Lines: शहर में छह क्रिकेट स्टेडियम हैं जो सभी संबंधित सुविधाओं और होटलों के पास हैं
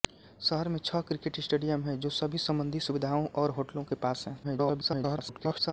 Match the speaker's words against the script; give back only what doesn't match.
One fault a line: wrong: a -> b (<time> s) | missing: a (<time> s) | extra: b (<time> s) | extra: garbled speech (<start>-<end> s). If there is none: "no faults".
extra: garbled speech (4.4-5.7 s)